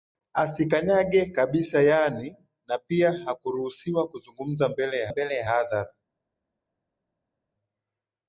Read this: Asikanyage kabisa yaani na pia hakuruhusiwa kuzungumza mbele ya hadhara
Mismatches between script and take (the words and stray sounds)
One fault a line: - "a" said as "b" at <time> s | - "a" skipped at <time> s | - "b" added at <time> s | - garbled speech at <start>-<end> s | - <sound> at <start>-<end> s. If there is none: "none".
- "mbele ya" added at 5.1 s